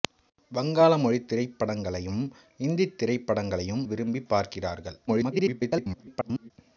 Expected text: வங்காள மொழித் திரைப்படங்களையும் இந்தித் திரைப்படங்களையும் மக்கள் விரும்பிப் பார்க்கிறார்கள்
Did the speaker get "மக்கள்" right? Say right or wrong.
wrong